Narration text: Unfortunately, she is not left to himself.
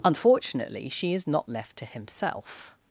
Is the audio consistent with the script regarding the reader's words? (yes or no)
yes